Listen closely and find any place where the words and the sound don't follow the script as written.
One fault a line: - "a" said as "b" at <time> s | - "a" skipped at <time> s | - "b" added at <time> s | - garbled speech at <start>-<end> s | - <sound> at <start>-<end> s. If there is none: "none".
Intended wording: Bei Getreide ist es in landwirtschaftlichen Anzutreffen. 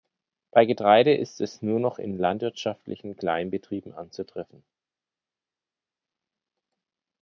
- "nur noch" added at 1.6 s
- "Kleinbetrieben" added at 3.1 s